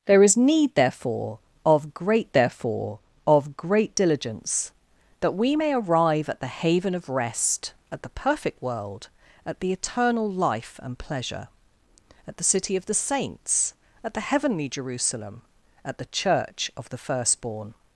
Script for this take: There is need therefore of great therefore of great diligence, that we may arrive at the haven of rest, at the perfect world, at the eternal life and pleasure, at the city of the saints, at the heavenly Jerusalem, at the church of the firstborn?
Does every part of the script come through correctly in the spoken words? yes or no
yes